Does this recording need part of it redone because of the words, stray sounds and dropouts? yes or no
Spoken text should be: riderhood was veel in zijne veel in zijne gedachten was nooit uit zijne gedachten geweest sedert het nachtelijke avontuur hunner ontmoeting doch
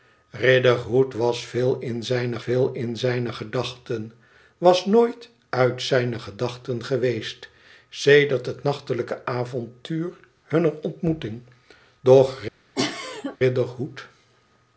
yes